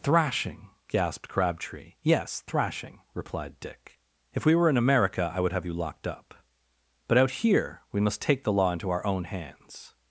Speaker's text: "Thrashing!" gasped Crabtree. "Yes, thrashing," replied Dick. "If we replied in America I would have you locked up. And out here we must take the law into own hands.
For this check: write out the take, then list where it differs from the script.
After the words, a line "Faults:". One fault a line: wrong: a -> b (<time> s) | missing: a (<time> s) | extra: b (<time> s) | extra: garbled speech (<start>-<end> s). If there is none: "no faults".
"Thrashing!" gasped Crabtree. "Yes, thrashing," replied Dick. "If we were in America I would have you locked up. But out here we must take the law into our own hands.
Faults:
wrong: replied -> were (4.5 s)
wrong: And -> But (7.1 s)
extra: our (8.9 s)